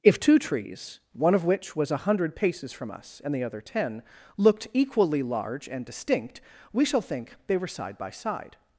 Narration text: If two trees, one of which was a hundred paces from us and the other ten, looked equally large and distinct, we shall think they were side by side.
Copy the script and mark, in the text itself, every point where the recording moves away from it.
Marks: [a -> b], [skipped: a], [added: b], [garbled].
If two trees, one of which was a hundred paces from us and the other ten, looked equally large and distinct, we shall think they were side by side.